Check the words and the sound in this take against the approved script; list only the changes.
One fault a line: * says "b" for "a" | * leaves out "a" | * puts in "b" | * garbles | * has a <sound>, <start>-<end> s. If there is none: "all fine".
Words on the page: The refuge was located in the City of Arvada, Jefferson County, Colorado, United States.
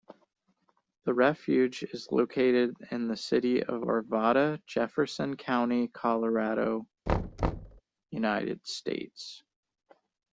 * says "is" for "was"
* has a thud, 7.1-7.8 s